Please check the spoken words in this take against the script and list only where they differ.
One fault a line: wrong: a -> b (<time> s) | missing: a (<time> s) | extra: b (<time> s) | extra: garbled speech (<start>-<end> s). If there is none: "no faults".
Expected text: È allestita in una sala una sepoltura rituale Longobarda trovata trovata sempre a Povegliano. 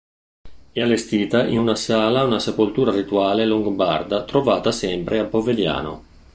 missing: trovata (4.7 s)